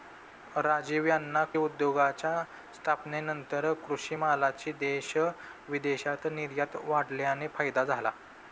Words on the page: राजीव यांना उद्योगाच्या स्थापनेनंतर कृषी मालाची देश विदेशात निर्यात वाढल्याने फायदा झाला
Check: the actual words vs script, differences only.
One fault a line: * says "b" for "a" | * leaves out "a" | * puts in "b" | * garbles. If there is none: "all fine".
all fine